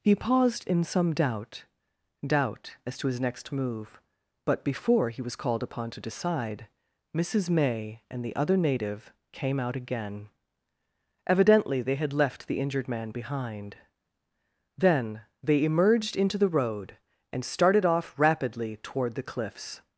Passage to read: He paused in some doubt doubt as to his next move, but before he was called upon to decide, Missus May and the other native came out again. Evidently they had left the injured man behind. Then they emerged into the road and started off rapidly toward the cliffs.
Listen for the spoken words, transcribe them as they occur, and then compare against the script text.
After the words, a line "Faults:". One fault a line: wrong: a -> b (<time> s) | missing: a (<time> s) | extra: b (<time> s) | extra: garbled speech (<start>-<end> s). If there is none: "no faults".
He paused in some doubt doubt as to his next move, but before he was called upon to decide, Missus May and the other native came out again. Evidently they had left the injured man behind. Then they emerged into the road and started off rapidly toward the cliffs.
Faults:
no faults